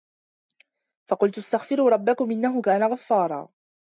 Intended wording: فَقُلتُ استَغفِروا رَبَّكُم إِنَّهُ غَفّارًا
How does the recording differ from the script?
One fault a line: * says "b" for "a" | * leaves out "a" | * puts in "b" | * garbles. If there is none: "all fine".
* puts in "كانَ"